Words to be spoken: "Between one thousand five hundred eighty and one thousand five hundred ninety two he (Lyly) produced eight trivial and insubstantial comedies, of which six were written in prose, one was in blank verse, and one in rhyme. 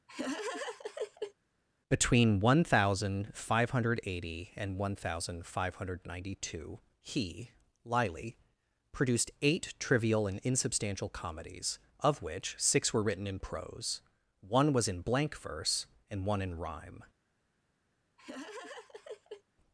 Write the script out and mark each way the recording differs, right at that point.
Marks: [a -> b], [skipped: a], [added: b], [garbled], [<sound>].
[laugh] "Between one thousand five hundred eighty and one thousand five hundred ninety two he (Lyly) produced eight trivial and insubstantial comedies, of which six were written in prose, one was in blank verse, and one in rhyme. [laugh]